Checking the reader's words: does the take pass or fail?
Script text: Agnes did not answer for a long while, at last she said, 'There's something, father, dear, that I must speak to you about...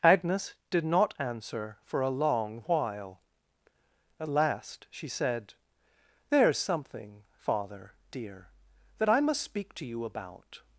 pass